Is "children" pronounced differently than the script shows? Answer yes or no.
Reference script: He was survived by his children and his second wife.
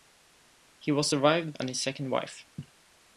yes